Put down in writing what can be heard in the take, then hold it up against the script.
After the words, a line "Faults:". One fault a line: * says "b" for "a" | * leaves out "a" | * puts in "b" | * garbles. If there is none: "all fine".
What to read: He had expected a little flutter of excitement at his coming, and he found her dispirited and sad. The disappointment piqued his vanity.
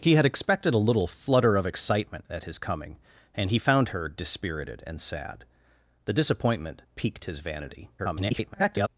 He had expected a little flutter of excitement at his coming, and he found her dispirited and sad. The disappointment piqued his vanity. [garbled]
Faults:
* garbles